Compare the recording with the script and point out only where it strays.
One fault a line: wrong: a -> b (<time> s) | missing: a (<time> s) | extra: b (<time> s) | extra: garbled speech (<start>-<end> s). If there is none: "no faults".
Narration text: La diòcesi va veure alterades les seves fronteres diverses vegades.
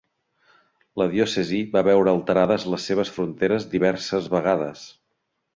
no faults